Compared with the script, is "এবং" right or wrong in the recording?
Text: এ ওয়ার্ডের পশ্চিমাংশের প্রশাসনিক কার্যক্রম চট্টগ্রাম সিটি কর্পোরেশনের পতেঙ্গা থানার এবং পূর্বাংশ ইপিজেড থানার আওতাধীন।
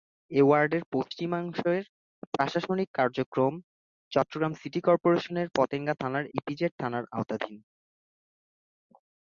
wrong